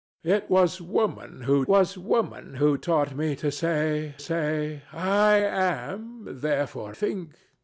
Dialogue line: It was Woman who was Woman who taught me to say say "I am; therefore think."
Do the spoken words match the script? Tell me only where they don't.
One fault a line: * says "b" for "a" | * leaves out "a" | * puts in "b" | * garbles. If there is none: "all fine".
all fine